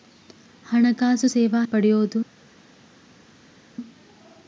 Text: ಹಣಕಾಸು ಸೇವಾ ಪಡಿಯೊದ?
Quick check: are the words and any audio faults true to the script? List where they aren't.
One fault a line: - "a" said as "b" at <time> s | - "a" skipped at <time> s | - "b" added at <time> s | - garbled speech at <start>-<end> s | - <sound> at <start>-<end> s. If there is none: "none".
none